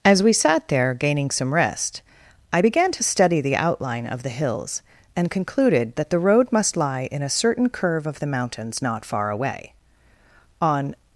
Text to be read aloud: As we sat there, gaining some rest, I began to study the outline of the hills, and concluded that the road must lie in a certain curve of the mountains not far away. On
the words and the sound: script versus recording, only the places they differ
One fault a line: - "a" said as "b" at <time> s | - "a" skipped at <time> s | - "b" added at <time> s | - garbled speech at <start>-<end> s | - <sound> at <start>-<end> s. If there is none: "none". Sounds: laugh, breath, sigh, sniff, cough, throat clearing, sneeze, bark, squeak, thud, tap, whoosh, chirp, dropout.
none